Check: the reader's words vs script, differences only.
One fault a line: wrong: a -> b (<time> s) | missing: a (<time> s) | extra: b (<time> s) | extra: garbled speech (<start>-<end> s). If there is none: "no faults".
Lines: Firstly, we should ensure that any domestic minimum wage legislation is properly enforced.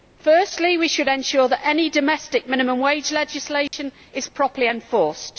no faults